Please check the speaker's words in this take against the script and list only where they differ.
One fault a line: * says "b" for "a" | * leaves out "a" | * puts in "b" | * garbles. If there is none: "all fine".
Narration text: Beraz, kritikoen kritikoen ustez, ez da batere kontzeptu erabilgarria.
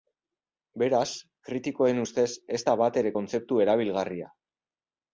* leaves out "kritikoen"